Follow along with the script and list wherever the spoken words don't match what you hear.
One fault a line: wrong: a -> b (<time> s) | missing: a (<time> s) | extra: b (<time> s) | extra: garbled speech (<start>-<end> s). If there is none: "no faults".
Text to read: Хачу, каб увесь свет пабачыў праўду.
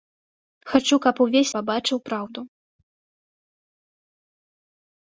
missing: свет (1.5 s)